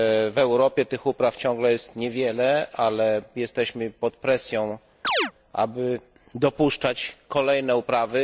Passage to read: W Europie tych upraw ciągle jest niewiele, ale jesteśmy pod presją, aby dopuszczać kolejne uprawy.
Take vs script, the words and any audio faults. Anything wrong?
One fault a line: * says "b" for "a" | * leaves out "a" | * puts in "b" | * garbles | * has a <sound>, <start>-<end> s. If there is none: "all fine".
* has a chirp, 5.0-5.3 s